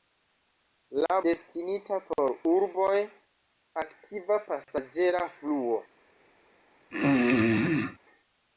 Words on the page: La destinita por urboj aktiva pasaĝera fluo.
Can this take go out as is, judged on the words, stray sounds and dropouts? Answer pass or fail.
fail